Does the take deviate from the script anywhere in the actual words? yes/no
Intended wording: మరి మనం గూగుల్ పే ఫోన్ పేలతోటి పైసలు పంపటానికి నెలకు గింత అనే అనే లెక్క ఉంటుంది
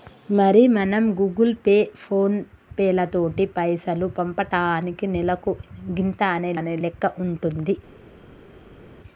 no